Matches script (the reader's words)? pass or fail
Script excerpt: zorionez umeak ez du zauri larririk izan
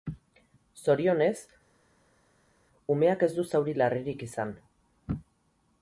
pass